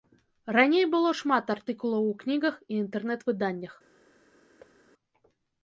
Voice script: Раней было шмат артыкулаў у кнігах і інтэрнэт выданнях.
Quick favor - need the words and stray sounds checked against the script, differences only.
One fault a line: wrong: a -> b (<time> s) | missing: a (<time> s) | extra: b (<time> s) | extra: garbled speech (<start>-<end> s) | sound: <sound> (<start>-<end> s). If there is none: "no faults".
sound: thud (4.6-4.8 s)